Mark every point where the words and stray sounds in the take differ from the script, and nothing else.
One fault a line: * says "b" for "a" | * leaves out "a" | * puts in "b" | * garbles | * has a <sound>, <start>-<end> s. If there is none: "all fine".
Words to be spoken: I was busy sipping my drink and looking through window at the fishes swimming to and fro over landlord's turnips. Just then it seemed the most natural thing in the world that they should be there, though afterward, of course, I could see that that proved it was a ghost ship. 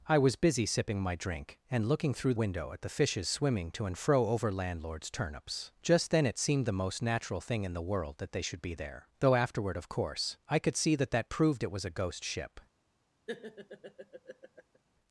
* has a laugh, 13.3-14.8 s